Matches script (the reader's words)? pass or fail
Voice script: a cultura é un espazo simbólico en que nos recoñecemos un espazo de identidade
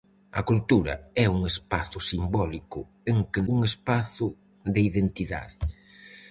fail